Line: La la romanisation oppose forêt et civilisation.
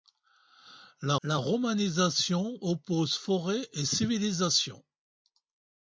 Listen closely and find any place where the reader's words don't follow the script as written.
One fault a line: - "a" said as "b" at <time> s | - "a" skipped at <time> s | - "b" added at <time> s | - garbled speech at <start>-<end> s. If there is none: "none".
none